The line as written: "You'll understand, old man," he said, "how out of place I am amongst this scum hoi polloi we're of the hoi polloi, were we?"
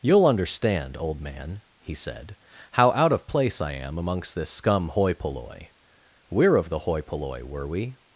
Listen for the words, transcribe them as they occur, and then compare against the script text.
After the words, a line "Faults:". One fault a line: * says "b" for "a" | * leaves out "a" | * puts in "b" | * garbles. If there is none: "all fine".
"You'll understand, old man," he said, "how out of place I am amongst this scum hoi polloi we're of the hoi polloi, were we?"
Faults:
all fine